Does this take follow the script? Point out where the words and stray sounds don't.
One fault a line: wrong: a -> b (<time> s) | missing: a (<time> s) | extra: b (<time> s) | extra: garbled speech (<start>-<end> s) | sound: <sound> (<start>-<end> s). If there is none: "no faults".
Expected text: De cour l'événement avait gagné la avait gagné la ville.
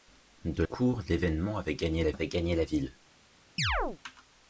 sound: chirp (3.6-4.0 s)